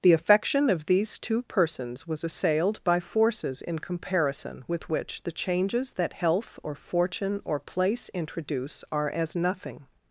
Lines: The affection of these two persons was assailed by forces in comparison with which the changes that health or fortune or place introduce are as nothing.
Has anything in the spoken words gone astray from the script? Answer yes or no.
no